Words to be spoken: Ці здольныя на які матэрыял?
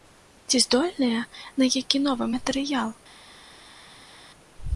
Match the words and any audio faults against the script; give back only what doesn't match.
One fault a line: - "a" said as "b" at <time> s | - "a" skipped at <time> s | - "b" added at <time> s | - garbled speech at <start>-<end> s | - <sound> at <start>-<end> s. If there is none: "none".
- "новы" added at 2.1 s